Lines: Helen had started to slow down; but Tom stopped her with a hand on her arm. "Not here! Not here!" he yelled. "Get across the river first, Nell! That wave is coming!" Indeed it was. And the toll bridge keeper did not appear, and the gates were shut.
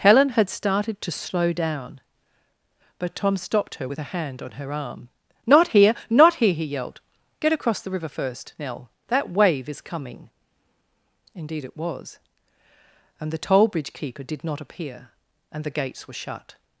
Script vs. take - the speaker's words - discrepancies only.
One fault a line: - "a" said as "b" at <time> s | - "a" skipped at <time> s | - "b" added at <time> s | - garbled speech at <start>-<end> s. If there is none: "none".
none